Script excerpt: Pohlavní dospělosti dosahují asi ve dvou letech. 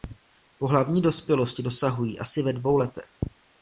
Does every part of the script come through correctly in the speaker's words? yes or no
yes